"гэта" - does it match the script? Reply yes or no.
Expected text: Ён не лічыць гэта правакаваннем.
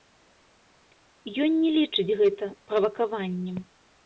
yes